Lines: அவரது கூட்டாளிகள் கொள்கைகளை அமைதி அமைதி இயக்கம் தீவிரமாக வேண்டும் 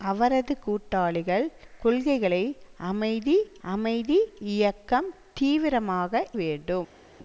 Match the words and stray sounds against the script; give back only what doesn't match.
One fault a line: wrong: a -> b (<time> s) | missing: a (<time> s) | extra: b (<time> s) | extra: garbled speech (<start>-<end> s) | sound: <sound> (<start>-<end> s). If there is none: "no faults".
no faults